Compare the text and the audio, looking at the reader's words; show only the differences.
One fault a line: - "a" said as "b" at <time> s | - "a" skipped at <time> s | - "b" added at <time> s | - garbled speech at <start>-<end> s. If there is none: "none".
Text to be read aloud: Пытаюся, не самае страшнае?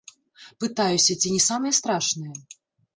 - "ці" added at 1.2 s